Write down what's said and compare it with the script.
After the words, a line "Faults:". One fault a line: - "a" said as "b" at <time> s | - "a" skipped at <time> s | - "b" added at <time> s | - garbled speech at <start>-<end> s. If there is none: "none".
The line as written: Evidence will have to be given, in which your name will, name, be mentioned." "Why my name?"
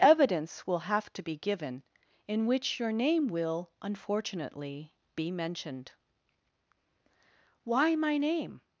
Evidence will have to be given, in which your name will, unfortunately, be mentioned." "Why my name?"
Faults:
- "name" said as "unfortunately" at 3.8 s